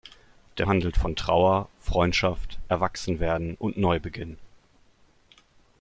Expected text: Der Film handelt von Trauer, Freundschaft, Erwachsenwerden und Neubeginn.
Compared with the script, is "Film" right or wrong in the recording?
wrong